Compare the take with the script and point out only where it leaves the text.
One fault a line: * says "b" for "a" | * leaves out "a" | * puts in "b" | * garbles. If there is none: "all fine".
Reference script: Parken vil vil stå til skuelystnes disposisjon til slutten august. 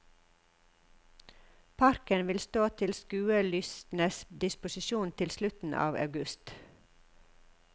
* leaves out "vil"
* puts in "av"